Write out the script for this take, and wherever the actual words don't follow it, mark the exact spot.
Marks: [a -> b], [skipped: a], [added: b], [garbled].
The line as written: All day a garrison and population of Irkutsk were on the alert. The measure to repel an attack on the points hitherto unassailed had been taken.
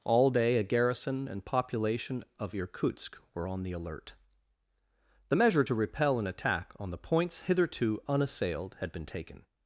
All day a garrison and population of Irkutsk were on the alert. The measure to repel an attack on the points hitherto unassailed had been taken.